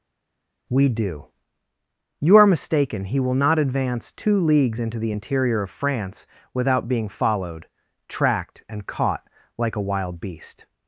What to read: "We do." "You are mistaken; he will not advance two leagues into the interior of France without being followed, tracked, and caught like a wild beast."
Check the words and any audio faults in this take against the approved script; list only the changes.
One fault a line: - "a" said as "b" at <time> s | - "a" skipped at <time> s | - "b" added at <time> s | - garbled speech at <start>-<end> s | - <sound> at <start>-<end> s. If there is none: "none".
none